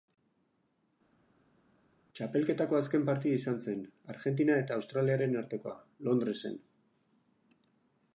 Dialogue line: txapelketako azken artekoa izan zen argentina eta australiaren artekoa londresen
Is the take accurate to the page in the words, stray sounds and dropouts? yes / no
no